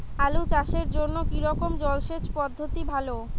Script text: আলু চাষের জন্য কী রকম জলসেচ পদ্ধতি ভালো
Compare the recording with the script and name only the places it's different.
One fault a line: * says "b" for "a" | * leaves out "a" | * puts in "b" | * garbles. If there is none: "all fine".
all fine